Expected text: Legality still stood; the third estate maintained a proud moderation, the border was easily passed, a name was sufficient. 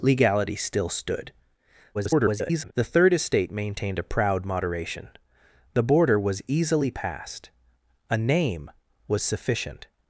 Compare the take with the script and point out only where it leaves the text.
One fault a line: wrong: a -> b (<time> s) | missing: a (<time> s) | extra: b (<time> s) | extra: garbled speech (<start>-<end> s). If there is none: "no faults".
extra: garbled speech (1.9-2.7 s)